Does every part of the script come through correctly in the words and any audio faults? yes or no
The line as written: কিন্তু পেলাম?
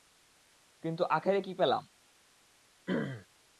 no